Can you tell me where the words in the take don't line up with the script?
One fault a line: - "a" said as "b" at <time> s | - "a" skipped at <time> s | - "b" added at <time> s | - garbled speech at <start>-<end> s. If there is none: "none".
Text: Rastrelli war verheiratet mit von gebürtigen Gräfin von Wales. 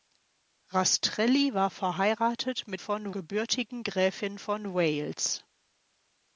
none